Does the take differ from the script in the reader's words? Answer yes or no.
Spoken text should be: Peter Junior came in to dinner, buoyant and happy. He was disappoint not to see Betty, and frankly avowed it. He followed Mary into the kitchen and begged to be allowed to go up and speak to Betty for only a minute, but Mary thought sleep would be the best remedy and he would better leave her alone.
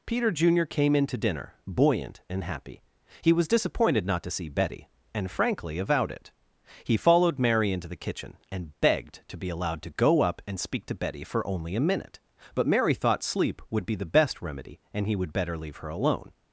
yes